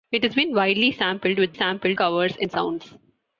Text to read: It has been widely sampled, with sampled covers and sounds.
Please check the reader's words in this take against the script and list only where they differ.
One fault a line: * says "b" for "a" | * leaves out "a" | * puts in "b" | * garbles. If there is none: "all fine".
all fine